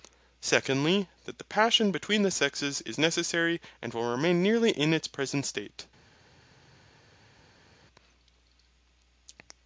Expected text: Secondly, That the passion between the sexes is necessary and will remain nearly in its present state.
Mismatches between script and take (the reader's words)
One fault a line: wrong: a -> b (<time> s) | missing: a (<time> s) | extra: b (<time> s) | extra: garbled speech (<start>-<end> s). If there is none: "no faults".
no faults